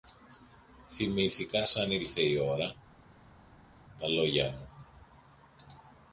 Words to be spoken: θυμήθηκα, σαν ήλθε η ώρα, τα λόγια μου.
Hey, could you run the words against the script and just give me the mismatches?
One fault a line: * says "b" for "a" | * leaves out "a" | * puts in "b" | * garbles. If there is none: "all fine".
all fine